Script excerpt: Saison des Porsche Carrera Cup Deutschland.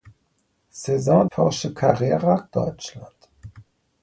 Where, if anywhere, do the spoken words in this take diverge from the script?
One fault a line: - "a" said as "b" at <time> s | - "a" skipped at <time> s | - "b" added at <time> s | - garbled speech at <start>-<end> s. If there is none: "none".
- "des" skipped at 1.2 s
- "Cup" skipped at 2.4 s